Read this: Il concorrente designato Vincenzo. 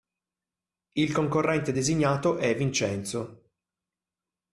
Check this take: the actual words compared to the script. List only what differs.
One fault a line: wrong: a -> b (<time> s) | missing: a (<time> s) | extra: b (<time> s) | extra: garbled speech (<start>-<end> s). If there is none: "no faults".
extra: è (2.4 s)